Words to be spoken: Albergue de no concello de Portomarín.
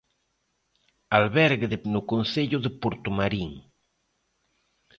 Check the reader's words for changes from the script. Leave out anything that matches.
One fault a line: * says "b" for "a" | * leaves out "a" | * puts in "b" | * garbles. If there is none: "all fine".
all fine